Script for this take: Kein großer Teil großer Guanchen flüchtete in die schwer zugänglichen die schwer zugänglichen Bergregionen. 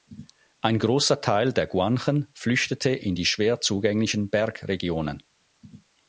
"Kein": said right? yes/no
no